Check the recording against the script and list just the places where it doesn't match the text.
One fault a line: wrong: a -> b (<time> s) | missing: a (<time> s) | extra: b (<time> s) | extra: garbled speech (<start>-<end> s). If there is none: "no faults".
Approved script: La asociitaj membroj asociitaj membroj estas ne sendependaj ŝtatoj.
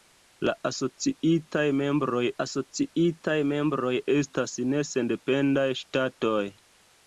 no faults